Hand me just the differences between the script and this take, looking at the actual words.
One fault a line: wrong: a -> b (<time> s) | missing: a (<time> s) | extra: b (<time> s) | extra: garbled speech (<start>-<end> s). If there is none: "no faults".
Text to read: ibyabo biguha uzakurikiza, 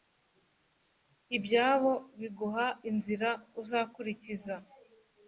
extra: inzira (2.9 s)